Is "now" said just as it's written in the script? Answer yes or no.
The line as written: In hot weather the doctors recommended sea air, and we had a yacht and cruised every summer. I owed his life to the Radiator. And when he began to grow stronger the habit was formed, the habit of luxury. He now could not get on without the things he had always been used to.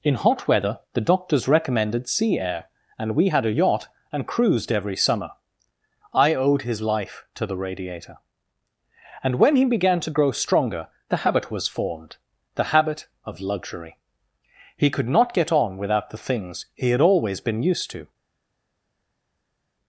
no